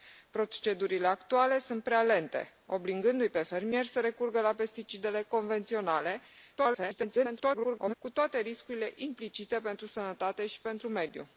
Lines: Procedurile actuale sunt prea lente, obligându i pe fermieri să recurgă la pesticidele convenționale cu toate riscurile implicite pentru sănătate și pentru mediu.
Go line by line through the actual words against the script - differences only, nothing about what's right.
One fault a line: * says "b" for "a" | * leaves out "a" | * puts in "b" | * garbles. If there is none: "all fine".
* garbles